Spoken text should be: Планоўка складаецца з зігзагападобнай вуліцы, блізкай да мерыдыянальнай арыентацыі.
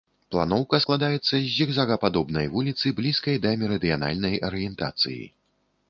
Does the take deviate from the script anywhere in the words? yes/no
no